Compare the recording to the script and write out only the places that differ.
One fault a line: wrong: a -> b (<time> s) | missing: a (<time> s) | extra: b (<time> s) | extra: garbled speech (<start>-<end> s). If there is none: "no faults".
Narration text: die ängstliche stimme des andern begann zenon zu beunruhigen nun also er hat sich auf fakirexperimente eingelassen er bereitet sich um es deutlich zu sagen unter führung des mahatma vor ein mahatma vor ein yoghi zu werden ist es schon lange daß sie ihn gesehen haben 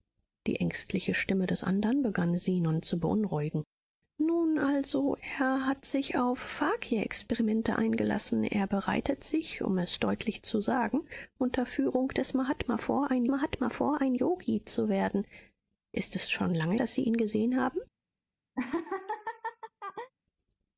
no faults